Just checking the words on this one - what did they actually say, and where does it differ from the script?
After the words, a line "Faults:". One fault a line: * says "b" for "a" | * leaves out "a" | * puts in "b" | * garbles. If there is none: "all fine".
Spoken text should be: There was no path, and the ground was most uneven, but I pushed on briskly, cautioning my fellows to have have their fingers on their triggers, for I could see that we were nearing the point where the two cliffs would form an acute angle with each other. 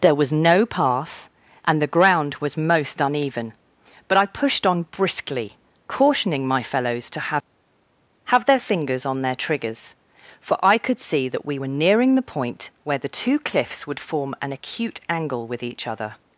There was no path, and the ground was most uneven, but I pushed on briskly, cautioning my fellows to have have their fingers on their triggers, for I could see that we were nearing the point where the two cliffs would form an acute angle with each other.
Faults:
all fine